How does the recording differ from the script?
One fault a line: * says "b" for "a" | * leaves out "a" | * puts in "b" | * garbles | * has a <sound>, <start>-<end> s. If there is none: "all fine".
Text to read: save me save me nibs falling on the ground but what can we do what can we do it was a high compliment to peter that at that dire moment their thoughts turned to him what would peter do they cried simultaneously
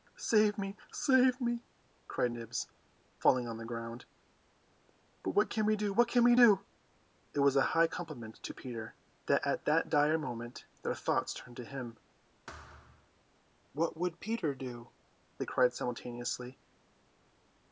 * puts in "cried"
* has a thud, 12.5-13.1 s